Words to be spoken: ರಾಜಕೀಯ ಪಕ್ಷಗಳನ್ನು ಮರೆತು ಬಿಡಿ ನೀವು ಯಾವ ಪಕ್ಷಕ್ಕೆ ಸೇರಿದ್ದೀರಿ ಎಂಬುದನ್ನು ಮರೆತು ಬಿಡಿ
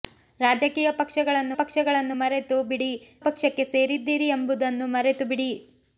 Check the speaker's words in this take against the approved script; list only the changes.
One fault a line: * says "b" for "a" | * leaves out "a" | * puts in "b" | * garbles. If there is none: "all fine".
* puts in "ಪಕ್ಷಗಳನ್ನು"
* leaves out "ನೀವು ಯಾವ"